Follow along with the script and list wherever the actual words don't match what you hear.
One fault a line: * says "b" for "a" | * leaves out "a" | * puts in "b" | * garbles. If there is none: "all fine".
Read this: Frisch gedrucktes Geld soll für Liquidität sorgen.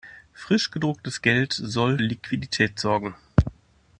* leaves out "für"